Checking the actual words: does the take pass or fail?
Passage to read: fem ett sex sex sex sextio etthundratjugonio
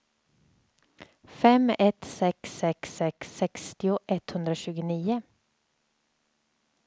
pass